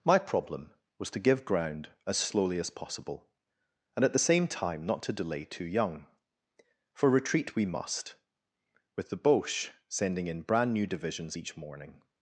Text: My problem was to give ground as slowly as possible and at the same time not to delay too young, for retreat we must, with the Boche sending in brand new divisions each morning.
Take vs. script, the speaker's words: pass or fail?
pass